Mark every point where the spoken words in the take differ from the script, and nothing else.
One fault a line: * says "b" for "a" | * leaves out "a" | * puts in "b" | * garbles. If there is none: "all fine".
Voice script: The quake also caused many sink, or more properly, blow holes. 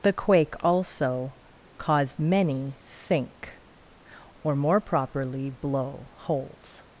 all fine